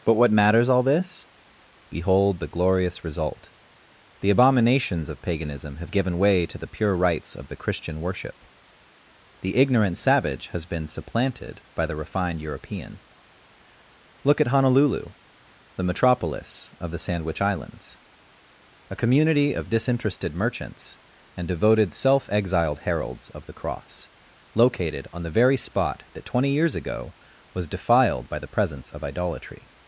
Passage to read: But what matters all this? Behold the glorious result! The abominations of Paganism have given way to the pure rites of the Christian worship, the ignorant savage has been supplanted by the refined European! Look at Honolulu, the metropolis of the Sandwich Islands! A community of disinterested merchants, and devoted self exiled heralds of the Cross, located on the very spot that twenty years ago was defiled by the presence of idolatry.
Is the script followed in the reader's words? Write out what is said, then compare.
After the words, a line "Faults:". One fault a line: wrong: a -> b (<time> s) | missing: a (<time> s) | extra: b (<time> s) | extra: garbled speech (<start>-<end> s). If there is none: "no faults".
But what matters all this? Behold the glorious result! The abominations of Paganism have given way to the pure rites of the Christian worship, the ignorant savage has been supplanted by the refined European! Look at Honolulu, the metropolis of the Sandwich Islands! A community of disinterested merchants, and devoted self exiled heralds of the Cross, located on the very spot that twenty years ago was defiled by the presence of idolatry.
Faults:
no faults